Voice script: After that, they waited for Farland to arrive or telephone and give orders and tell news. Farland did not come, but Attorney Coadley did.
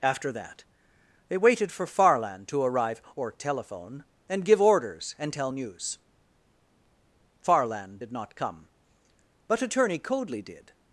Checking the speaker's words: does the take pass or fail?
pass